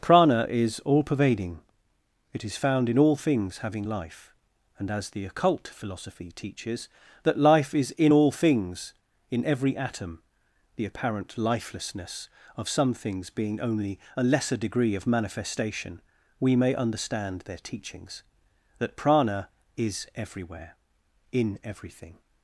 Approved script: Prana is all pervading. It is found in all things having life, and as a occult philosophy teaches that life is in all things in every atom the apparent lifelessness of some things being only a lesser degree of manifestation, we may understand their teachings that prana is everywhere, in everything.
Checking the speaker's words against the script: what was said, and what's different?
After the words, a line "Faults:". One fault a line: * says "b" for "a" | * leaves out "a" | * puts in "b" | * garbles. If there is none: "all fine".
Prana is all pervading. It is found in all things having life, and as the occult philosophy teaches that life is in all things in every atom the apparent lifelessness of some things being only a lesser degree of manifestation, we may understand their teachings that prana is everywhere, in everything.
Faults:
* says "the" for "a"